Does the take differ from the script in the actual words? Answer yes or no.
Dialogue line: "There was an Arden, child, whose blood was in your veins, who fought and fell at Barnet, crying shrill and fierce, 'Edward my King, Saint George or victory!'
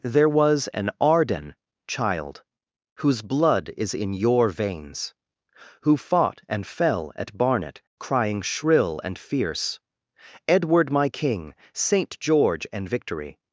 yes